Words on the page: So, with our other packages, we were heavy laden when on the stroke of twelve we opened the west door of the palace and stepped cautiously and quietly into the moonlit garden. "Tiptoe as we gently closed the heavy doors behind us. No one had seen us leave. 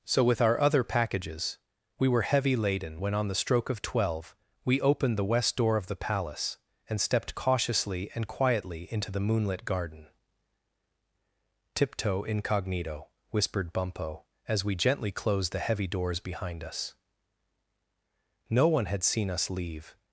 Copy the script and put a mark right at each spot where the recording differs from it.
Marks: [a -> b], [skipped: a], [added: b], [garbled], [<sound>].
So, with our other packages, we were heavy laden when on the stroke of twelve we opened the west door of the palace and stepped cautiously and quietly into the moonlit garden. "Tiptoe [added: incognito whispered Bumpo] as we gently closed the heavy doors behind us. No one had seen us leave.